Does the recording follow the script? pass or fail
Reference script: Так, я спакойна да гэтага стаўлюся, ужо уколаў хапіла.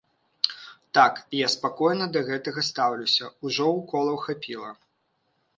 pass